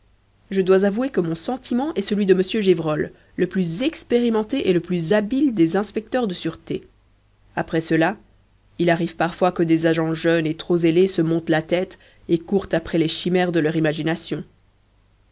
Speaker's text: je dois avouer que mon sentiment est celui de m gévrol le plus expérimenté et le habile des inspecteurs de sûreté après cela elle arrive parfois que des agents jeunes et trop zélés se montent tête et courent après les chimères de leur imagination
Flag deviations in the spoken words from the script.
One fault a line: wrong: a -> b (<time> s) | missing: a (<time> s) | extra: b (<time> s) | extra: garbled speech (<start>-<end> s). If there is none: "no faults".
extra: plus (4.8 s)
wrong: elle -> il (8.8 s)
extra: la (11.5 s)